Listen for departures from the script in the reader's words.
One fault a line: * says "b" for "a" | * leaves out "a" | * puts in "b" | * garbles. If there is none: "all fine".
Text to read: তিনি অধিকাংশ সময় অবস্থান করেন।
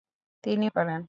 * leaves out "অধিকাংশ সময় অবস্থান"